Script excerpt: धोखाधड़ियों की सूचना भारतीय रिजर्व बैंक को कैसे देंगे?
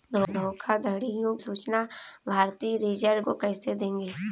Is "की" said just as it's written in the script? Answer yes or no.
no